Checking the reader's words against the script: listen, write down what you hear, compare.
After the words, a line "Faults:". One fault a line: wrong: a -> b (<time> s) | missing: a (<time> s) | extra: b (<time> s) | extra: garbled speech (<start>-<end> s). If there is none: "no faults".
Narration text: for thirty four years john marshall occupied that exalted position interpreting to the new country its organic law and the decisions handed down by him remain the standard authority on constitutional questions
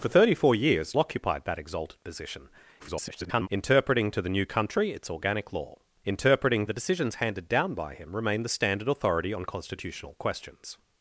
for thirty four years occupied that exalted position [garbled] interpreting to the new country its organic law interpreting the decisions handed down by him remain the standard authority on constitutional questions
Faults:
missing: john marshall (0.9 s)
extra: garbled speech (2.8-3.5 s)
wrong: and -> interpreting (6.0 s)